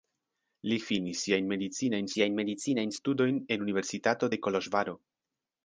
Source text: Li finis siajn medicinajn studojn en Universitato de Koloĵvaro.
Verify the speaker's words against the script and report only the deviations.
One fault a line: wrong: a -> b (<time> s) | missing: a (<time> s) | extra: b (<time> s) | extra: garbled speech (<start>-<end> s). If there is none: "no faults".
extra: siajn medicinajn (2.1 s)